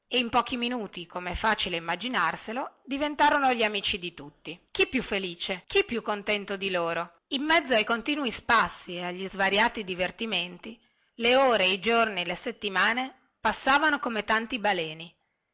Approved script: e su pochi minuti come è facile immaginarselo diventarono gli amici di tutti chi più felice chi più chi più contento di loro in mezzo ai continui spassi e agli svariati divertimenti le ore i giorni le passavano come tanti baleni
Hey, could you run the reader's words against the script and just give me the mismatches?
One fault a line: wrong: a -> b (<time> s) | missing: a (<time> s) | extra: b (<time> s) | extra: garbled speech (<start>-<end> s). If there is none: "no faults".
wrong: su -> in (0.2 s)
missing: chi più (6.0 s)
extra: settimane (12.3 s)